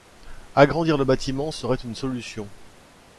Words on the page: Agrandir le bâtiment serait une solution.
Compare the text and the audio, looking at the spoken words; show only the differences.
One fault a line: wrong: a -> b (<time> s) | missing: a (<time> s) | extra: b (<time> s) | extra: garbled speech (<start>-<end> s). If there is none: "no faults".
no faults